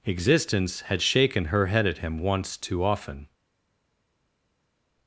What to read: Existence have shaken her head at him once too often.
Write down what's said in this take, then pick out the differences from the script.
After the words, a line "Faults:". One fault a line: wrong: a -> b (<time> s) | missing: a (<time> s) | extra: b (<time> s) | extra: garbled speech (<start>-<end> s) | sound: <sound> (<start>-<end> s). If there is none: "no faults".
Existence had shaken her head at him once too often.
Faults:
wrong: have -> had (0.8 s)